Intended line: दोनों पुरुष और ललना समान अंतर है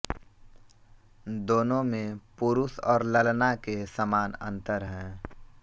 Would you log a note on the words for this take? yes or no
yes